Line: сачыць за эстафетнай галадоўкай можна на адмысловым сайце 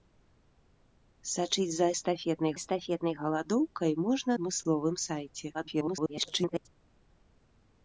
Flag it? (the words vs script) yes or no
yes